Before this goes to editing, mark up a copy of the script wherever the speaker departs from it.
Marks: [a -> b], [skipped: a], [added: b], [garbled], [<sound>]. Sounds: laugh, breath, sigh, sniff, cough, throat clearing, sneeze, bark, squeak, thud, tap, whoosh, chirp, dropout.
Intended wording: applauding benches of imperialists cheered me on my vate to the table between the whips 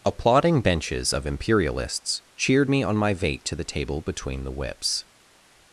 applauding benches of imperialists cheered me on my vate to the table between the whips